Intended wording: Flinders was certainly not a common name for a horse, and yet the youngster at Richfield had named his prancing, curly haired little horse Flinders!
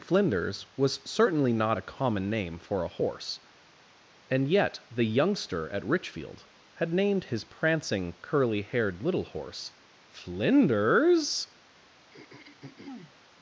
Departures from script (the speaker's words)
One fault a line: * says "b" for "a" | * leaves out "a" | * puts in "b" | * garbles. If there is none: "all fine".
all fine